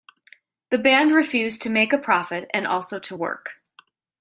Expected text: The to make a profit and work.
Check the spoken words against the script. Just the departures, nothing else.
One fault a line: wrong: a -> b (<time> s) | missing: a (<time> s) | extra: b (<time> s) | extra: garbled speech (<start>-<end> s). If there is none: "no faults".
extra: band refused (0.8 s)
extra: also to (2.6 s)